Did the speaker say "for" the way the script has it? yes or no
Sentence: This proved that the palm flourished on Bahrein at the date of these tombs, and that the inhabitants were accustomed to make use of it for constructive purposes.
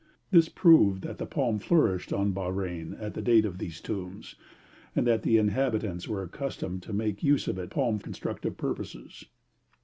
no